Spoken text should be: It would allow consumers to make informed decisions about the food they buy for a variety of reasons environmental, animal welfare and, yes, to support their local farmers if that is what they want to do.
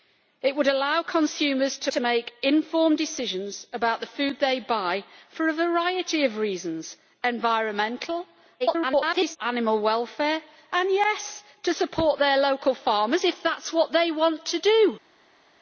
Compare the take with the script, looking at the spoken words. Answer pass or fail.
fail